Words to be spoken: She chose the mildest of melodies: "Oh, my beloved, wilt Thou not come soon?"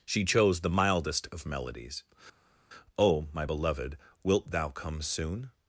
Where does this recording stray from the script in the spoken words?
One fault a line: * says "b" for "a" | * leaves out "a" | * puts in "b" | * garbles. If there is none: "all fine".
* leaves out "not"